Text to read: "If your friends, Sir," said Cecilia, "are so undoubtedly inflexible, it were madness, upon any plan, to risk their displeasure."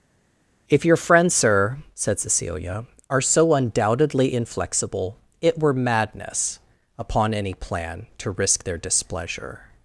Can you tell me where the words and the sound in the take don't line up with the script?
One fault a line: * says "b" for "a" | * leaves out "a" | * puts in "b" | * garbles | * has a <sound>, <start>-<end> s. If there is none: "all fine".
all fine